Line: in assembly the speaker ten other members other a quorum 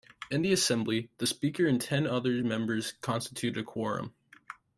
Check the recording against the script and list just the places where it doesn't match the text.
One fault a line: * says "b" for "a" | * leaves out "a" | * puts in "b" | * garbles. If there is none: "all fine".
* puts in "the"
* puts in "and"
* says "constitute" for "other"